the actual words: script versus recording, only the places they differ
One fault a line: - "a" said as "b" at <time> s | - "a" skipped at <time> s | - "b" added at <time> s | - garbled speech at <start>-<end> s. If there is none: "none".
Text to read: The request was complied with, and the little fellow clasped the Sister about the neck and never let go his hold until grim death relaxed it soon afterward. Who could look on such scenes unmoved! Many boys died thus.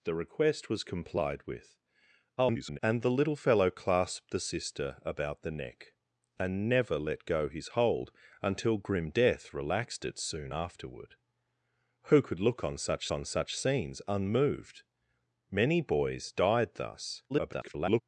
- garbled speech at 2.4-2.8 s
- "on such" added at 13.1 s
- garbled speech at 17.3-18.0 s